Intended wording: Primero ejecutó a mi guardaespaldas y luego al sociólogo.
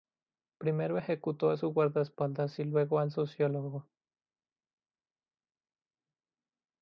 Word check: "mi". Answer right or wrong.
wrong